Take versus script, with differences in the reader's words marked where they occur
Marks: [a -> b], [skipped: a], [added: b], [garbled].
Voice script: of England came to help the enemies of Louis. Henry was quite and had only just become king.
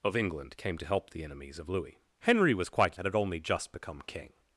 of England came to help the enemies of Louis. Henry was quite and had only just become king.